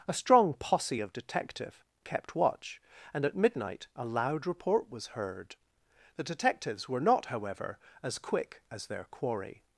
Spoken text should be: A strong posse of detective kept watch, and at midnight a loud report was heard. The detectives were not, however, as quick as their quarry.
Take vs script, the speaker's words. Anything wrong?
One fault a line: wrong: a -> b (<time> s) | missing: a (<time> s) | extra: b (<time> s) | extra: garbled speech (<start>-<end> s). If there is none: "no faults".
no faults